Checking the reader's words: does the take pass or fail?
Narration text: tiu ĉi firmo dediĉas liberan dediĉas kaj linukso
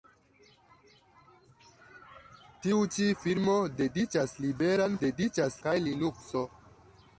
pass